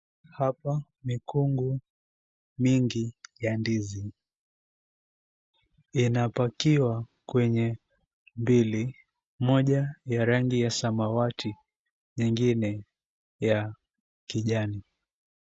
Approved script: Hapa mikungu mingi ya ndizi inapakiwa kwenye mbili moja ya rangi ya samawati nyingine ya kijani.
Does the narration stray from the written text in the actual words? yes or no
no